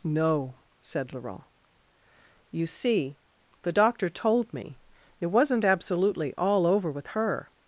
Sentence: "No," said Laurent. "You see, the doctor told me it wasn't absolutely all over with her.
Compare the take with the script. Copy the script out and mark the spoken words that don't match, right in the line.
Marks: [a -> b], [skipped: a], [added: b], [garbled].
"No," said Laurent. "You see, the doctor told me it wasn't absolutely all over with her.